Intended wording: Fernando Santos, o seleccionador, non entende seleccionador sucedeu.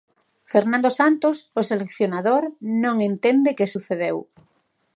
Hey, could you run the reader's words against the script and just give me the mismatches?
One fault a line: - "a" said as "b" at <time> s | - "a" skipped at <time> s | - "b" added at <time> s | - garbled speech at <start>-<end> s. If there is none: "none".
- "seleccionador" said as "que" at 3.6 s